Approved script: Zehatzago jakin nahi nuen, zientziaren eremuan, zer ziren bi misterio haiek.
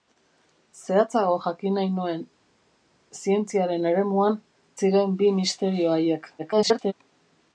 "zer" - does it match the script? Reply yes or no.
no